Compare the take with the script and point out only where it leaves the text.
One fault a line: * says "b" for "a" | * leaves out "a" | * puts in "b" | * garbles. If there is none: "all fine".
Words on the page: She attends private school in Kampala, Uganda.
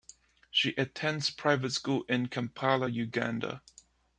all fine